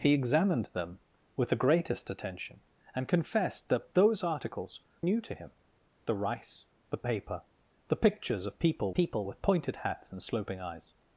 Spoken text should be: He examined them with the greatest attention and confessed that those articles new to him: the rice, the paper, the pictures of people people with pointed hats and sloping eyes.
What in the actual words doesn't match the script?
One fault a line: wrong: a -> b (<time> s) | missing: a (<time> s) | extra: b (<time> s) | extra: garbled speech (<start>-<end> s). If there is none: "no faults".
no faults